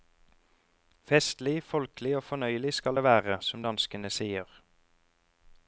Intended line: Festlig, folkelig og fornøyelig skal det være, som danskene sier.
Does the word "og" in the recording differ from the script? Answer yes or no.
no